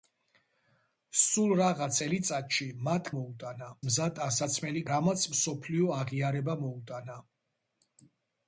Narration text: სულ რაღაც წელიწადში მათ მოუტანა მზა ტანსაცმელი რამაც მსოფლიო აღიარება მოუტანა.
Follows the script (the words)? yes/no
yes